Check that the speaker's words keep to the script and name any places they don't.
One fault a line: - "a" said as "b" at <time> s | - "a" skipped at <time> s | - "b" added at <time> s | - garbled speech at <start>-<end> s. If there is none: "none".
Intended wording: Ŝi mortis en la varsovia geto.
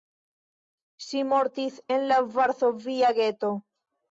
none